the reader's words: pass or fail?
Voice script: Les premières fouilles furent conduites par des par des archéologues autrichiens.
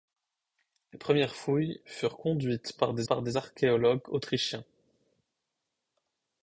pass